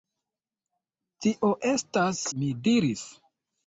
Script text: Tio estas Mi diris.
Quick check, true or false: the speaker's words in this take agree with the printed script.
true